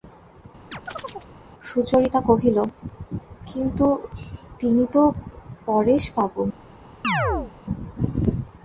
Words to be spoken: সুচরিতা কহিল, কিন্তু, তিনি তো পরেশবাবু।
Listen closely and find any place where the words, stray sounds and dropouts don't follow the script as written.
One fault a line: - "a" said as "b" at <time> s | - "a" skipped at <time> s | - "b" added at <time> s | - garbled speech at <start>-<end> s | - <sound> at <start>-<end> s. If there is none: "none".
- chirp at 0.7-1.3 s
- chirp at 7.0-7.5 s